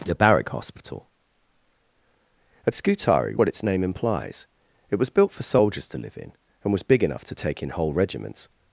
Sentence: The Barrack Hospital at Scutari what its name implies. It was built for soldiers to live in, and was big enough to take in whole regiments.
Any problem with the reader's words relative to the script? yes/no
no